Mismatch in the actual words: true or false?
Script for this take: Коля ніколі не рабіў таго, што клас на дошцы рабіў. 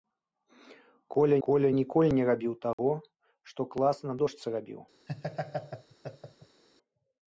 true